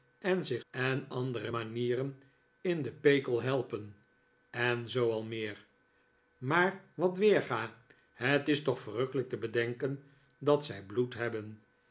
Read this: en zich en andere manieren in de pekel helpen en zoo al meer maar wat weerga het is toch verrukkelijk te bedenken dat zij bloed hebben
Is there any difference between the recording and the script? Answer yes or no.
no